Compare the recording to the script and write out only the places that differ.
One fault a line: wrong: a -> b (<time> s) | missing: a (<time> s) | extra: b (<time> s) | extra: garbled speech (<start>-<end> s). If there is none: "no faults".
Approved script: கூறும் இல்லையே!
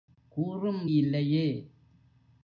no faults